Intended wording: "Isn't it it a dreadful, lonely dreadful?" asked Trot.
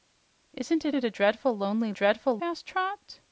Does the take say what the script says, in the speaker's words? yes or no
yes